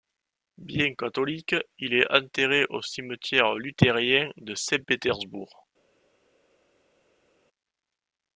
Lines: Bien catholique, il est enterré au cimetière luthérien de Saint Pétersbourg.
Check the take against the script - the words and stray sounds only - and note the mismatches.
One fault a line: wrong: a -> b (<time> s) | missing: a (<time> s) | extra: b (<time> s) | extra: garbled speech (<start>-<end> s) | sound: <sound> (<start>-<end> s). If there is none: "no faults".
no faults